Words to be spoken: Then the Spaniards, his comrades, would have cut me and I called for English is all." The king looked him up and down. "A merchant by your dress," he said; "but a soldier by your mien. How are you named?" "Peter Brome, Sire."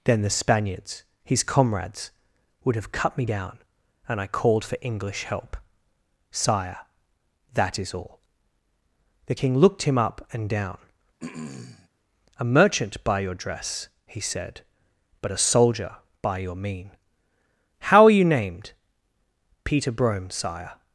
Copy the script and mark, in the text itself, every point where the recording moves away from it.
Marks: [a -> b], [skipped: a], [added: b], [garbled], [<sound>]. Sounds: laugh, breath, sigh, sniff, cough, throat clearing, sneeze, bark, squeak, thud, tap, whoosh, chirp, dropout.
Then the Spaniards, his comrades, would have cut me [added: down] and I called for English [added: help Sire that] is all." The king looked him up and down. [throat clearing] "A merchant by your dress," he said; "but a soldier by your mien. How are you named?" "Peter Brome, Sire."